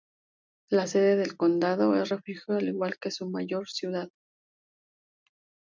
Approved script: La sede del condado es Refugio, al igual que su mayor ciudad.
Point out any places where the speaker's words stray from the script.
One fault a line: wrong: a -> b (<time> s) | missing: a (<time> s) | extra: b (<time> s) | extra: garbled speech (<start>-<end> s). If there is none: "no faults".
no faults